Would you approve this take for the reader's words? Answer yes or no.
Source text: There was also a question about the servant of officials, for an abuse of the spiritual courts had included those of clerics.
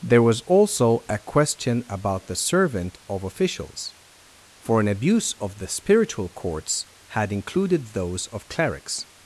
yes